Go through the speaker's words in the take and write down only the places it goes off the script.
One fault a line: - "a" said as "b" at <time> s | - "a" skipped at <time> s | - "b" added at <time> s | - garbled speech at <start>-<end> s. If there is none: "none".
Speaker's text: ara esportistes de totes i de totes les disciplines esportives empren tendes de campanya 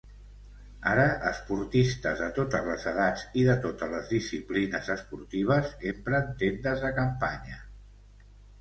- "les edats" added at 2.7 s